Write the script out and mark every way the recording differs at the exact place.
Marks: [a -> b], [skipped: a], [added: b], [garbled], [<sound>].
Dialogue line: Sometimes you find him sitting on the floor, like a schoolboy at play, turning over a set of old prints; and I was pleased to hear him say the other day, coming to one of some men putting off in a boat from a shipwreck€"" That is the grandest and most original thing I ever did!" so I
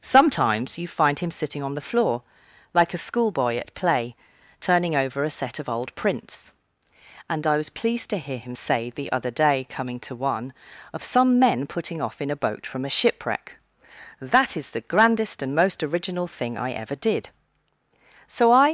Sometimes you find him sitting on the floor, like a schoolboy at play, turning over a set of old prints; and I was pleased to hear him say the other day, coming to one of some men putting off in a boat from a shipwreck€"" That is the grandest and most original thing I ever did!" so I